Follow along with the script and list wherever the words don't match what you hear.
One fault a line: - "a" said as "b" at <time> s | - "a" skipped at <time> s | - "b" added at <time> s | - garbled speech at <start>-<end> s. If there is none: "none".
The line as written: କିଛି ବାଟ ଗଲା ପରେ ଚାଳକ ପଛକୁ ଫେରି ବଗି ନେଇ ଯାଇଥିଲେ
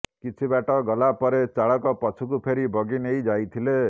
none